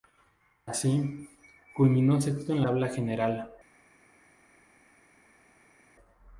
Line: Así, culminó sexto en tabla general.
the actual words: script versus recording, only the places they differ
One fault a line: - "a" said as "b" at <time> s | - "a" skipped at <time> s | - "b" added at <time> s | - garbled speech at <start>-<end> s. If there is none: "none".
none